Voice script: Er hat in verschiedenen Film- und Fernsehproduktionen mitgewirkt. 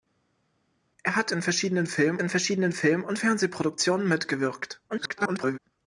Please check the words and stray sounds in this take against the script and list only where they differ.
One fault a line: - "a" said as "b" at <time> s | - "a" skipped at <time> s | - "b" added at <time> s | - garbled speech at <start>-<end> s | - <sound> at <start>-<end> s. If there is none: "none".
- "in verschiedenen Film" added at 2.2 s
- garbled speech at 4.9-5.6 s